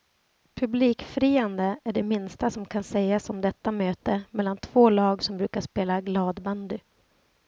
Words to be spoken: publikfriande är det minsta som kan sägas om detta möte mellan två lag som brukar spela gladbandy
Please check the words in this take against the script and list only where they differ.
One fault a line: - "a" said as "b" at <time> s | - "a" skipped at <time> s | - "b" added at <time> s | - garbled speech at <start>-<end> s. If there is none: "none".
none